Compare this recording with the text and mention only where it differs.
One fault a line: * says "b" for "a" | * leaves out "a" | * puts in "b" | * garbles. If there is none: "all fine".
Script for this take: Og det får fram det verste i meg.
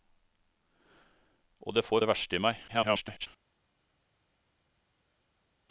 * leaves out "fram"
* garbles